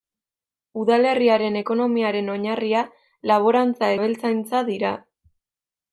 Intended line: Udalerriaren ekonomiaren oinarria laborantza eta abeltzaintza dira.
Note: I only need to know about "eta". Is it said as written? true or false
false